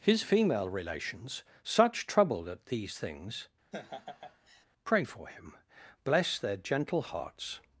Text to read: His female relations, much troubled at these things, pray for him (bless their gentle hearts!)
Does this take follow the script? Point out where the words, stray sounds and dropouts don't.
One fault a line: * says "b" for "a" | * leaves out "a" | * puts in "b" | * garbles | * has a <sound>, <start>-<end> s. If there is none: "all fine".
* says "such" for "much"
* has a laugh, 3.7-4.7 s